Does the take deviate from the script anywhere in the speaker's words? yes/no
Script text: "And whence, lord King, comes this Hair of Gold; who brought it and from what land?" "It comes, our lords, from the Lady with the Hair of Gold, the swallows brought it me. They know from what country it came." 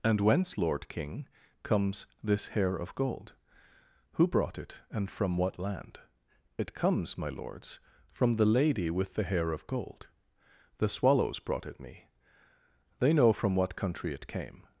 yes